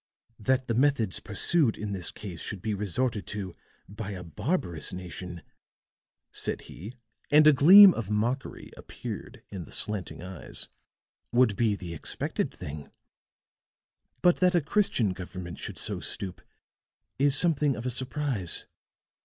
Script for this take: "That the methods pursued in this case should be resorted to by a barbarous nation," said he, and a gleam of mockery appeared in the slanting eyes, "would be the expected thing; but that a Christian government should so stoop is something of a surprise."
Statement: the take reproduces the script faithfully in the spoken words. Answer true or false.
true